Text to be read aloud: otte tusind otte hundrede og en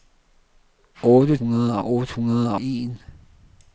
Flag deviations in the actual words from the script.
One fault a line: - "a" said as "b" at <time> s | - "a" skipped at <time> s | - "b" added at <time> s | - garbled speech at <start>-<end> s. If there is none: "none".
- "tusind" said as "hundrede" at 1.4 s
- "og" skipped at 2.5 s